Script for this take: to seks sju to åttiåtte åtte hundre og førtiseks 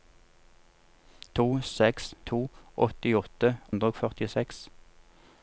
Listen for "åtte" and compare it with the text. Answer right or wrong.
wrong